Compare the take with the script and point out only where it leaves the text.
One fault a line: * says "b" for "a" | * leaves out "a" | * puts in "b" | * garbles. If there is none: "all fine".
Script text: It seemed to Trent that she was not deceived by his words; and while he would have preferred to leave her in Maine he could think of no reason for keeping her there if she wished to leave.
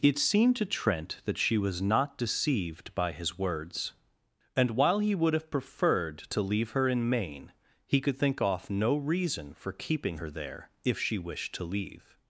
* says "off" for "of"